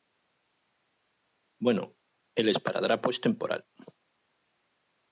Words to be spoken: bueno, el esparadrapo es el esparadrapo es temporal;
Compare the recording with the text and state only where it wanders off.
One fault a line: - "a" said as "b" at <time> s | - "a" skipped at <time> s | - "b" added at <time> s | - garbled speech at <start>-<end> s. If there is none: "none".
- "el esparadrapo es" skipped at 3.2 s